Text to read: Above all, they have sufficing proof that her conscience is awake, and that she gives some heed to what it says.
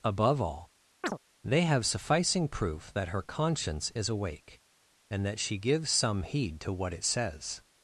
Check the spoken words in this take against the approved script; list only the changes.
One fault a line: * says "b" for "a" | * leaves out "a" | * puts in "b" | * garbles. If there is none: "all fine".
all fine